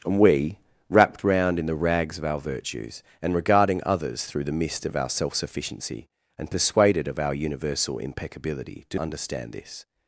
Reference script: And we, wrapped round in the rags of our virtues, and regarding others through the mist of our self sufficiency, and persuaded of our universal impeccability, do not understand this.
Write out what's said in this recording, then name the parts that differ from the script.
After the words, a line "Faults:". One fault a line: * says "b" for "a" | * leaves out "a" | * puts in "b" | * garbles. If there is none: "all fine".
And we, wrapped round in the rags of our virtues, and regarding others through the mist of our self sufficiency, and persuaded of our universal impeccability, do understand this.
Faults:
* leaves out "not"